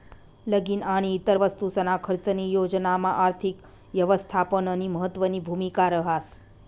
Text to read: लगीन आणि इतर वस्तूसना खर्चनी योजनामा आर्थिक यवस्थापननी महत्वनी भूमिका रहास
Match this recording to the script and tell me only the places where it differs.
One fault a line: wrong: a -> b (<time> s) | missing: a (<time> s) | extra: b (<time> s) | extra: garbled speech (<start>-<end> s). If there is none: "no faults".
no faults